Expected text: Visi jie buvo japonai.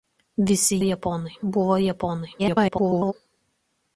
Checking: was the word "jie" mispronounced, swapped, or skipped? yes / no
yes